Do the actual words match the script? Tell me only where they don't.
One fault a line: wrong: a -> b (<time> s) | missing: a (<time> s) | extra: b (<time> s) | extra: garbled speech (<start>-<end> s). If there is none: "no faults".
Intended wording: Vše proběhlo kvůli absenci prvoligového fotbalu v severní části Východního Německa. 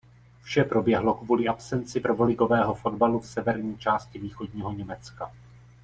no faults